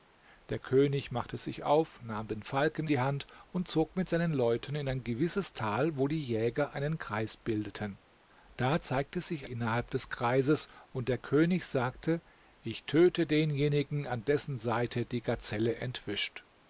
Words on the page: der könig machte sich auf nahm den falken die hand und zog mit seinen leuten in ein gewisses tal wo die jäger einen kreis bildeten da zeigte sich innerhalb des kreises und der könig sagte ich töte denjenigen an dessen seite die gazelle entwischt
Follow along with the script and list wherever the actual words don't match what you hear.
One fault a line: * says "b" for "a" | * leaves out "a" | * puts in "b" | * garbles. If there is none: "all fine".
all fine